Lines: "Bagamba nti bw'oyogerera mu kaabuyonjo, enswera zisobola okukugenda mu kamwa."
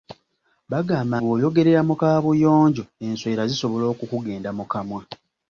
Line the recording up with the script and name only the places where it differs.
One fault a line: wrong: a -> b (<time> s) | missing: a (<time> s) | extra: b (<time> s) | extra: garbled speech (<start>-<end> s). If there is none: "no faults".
missing: nti (1.1 s)